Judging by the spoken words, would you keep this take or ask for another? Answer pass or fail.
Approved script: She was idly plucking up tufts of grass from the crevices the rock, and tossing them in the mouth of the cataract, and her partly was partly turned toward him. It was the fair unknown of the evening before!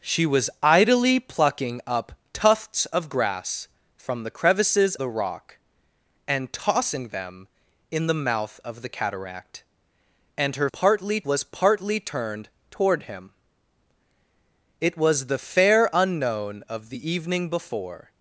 pass